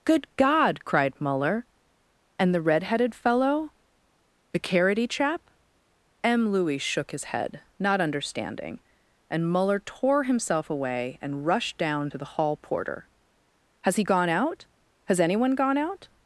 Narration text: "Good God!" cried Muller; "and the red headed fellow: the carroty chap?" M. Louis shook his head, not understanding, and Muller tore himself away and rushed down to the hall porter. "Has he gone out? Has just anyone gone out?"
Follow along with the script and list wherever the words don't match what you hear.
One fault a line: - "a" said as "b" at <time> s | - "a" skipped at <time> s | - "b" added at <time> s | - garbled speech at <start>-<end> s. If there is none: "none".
- "just" skipped at 15.2 s